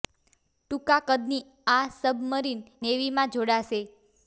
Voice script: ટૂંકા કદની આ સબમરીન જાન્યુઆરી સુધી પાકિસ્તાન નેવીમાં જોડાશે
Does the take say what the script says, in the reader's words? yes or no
no